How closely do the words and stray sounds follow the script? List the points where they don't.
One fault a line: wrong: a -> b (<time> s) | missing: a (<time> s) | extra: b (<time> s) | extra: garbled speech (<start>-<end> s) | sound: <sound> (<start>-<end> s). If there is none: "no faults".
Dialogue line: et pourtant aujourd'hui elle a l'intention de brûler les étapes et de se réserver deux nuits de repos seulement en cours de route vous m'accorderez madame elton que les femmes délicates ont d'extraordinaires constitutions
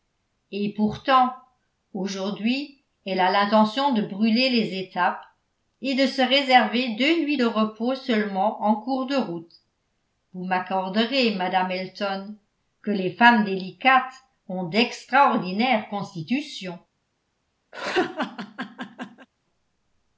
sound: laugh (17.7-19.3 s)